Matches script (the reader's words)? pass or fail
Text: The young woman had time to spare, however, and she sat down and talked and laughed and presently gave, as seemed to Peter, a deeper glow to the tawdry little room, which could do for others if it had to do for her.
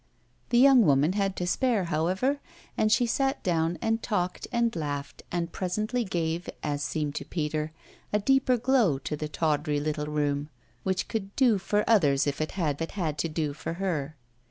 fail